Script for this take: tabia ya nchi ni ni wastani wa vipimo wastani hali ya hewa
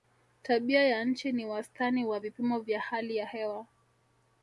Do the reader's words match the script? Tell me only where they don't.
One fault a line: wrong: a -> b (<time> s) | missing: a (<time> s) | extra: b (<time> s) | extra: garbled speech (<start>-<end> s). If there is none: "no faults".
missing: ni (1.4 s)
wrong: wastani -> vya (2.6 s)